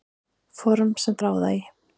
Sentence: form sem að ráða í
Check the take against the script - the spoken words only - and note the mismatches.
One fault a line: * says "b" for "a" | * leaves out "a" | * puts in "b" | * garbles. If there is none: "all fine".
all fine